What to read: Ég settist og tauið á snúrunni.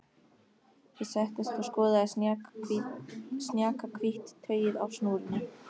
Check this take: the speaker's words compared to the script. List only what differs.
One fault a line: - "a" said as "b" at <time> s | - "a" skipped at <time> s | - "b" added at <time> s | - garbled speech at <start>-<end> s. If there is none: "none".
- "skoðaði snjakahvítt" added at 1.7 s